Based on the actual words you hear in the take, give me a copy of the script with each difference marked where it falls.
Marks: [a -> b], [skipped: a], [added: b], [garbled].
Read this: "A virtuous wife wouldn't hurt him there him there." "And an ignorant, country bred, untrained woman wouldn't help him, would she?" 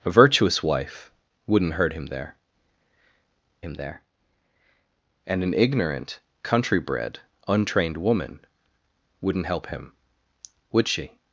"A virtuous wife wouldn't hurt him there him there." "And an ignorant, country bred, untrained woman wouldn't help him, would she?"